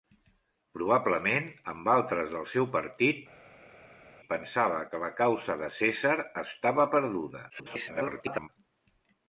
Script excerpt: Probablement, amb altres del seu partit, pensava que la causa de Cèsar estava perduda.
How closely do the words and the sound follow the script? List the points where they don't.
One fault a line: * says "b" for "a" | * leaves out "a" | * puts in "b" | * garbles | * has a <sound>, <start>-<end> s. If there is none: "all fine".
* garbles